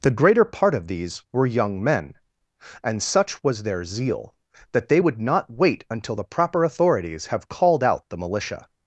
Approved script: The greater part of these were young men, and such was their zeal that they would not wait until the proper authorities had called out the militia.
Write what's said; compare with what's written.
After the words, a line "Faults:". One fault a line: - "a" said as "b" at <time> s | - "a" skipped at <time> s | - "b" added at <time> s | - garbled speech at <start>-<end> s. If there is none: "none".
The greater part of these were young men, and such was their zeal that they would not wait until the proper authorities have called out the militia.
Faults:
- "had" said as "have" at 7.3 s